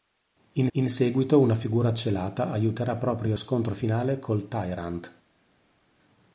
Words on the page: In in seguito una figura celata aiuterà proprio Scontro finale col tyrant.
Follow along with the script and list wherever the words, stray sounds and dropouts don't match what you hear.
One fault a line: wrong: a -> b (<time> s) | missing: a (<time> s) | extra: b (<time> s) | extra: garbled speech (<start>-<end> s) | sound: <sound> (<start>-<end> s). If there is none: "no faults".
no faults